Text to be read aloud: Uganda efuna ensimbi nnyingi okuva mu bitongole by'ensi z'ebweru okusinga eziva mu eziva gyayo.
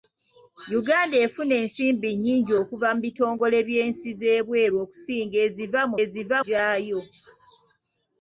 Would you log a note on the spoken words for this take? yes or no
no